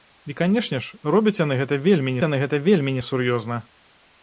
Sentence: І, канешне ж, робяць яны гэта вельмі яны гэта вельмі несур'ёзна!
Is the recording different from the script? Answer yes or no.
no